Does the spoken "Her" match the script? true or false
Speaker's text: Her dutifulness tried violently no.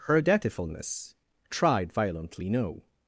true